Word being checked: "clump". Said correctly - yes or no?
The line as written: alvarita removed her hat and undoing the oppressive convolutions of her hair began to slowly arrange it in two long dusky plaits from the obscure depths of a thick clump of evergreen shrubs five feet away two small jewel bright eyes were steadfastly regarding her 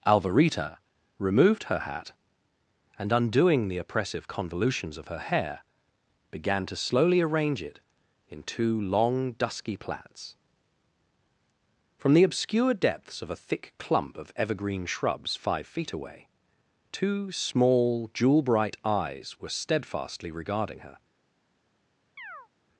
yes